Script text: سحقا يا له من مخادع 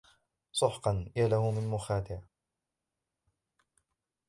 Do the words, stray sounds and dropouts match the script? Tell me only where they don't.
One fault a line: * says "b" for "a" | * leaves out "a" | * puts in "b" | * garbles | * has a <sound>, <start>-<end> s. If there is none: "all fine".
all fine